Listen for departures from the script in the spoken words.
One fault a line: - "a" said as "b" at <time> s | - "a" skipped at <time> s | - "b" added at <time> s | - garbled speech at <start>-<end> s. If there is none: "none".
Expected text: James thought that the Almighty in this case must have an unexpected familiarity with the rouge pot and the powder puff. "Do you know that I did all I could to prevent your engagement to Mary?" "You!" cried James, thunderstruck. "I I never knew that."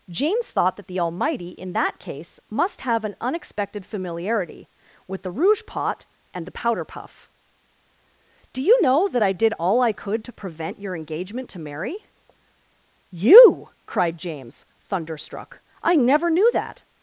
- "this" said as "that" at 1.7 s
- "I" skipped at 15.9 s